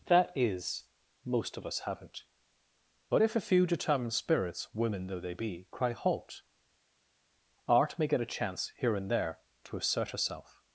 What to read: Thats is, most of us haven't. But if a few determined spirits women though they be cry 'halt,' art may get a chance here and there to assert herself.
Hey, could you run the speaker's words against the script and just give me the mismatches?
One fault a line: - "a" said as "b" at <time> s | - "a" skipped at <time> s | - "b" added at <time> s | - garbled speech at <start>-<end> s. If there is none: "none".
- "Thats" said as "That" at 0.1 s